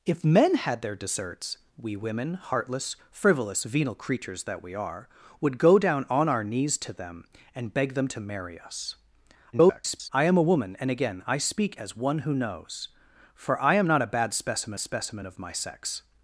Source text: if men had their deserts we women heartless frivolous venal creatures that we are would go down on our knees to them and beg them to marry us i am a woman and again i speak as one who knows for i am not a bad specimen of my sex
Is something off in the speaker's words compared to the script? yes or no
yes